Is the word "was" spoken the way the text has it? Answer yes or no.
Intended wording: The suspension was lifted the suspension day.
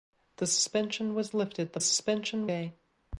yes